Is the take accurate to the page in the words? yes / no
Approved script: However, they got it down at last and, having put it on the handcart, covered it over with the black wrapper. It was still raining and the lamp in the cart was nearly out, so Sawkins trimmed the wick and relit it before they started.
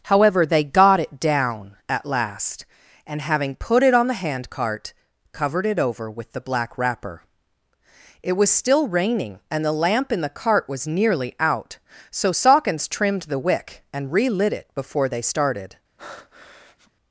yes